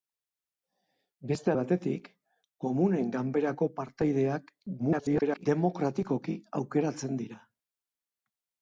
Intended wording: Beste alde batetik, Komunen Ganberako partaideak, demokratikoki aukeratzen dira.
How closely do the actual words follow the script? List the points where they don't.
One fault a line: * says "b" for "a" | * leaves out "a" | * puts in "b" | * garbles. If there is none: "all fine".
* leaves out "alde"
* garbles